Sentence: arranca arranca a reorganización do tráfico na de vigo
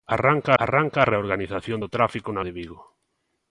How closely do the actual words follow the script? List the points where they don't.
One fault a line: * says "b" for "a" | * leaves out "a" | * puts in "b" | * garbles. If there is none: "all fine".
all fine